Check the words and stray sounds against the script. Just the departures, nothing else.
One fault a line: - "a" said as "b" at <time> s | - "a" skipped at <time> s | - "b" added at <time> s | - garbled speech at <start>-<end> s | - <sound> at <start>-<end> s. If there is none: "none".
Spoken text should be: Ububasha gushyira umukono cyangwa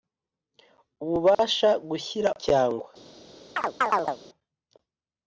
- dropout at 1.3-1.4 s
- "umukono" skipped at 2.3 s
- chirp at 3.6-4.2 s